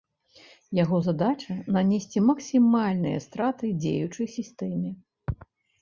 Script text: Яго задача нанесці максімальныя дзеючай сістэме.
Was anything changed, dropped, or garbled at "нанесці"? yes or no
no